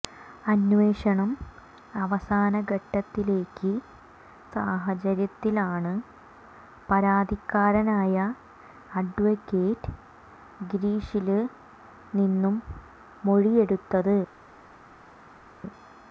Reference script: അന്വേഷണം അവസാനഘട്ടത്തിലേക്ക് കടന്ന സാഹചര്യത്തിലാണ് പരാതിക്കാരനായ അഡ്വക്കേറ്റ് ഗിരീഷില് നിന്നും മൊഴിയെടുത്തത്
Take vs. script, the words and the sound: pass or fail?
fail